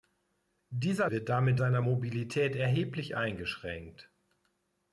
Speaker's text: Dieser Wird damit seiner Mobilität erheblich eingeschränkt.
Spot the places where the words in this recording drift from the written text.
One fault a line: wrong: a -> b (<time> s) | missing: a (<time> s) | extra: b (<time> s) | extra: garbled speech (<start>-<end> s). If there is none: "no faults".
no faults